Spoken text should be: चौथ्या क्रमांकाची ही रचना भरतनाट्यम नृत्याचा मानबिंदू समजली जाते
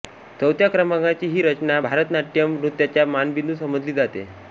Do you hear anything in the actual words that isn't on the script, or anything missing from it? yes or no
no